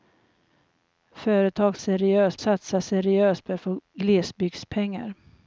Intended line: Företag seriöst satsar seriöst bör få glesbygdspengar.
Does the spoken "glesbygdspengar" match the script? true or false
true